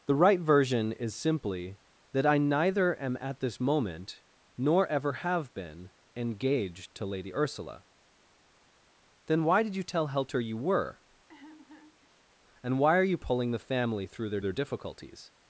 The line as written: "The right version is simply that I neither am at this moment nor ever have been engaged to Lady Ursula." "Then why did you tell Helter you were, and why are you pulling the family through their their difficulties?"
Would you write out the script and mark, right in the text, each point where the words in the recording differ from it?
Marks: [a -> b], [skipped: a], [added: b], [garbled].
"The right version is simply that I neither am at this moment nor ever have been engaged to Lady Ursula." "Then why did you tell Helter you were, and why are you pulling the family through their their difficulties?"